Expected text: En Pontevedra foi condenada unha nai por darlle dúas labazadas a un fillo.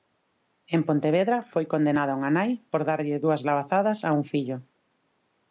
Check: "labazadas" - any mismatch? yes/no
no